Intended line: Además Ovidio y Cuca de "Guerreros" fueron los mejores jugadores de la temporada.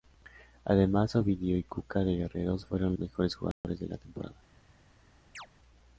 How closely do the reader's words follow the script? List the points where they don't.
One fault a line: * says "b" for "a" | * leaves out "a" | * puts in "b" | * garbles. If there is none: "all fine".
* leaves out "los"